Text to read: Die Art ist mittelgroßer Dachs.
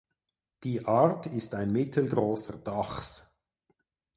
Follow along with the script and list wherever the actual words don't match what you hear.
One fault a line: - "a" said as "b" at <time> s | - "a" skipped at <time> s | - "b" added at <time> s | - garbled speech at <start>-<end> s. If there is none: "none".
- "ein" added at 1.5 s